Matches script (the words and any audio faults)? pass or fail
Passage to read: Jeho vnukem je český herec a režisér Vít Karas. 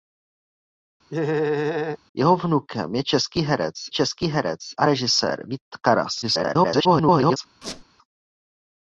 fail